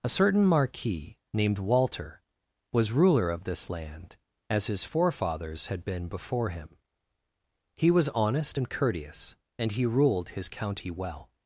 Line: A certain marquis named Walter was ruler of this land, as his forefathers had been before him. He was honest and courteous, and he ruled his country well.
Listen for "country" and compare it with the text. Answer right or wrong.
wrong